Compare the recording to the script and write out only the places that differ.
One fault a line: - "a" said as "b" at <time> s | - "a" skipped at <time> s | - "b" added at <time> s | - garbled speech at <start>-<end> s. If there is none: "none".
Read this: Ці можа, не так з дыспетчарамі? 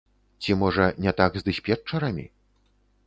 none